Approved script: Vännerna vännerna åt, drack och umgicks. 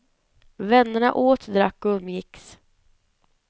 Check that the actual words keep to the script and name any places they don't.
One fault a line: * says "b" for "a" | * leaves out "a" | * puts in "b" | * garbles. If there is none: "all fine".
* leaves out "vännerna"